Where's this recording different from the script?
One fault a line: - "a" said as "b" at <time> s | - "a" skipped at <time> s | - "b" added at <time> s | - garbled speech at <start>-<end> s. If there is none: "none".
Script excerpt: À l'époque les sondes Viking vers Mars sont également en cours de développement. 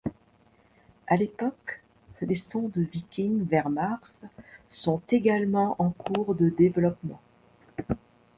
none